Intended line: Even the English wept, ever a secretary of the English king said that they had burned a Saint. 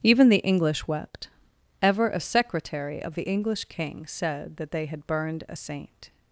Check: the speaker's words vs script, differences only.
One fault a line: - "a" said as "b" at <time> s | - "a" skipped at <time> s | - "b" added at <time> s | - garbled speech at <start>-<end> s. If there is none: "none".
none